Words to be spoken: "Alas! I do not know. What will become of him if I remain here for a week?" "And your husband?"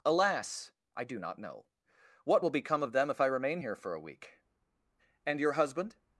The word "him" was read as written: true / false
false